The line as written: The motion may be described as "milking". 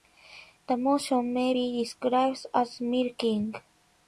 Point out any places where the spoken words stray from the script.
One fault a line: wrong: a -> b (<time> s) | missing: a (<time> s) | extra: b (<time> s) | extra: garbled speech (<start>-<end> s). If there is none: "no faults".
no faults